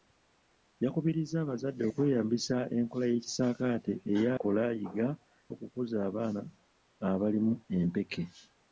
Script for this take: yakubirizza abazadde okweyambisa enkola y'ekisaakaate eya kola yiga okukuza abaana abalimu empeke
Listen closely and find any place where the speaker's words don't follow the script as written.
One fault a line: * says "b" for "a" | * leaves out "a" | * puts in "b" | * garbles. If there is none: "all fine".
all fine